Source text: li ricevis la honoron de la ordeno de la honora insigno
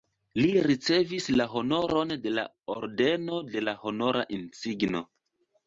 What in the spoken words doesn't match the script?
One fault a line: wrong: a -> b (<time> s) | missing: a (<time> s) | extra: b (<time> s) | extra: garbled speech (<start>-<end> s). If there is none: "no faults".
no faults